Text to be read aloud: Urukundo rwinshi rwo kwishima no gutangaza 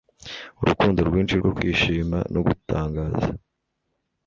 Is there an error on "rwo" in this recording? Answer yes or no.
no